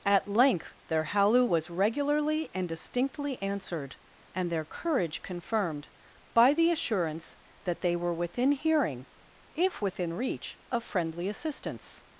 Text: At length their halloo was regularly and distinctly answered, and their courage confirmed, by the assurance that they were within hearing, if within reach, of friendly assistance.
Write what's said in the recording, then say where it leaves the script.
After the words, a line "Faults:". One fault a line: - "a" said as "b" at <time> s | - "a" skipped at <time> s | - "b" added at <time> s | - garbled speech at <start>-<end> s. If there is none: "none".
At length their halloo was regularly and distinctly answered, and their courage confirmed, by the assurance that they were within hearing, if within reach, of friendly assistance.
Faults:
none